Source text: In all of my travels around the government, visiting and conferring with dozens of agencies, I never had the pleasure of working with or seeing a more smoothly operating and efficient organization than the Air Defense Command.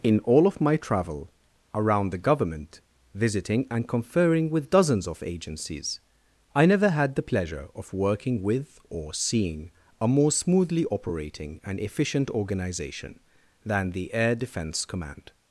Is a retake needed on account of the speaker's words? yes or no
yes